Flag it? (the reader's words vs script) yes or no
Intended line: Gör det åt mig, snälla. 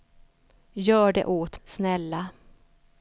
yes